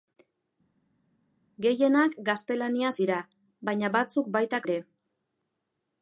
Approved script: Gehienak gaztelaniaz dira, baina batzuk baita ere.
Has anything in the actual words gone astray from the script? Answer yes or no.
no